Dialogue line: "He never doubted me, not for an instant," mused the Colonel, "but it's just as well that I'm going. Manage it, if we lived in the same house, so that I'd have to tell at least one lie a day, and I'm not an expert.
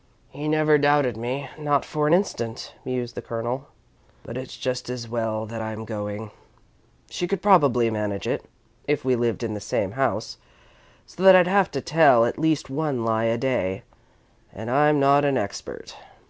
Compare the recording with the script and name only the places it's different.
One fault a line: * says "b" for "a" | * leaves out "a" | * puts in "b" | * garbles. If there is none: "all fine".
* puts in "She could probably"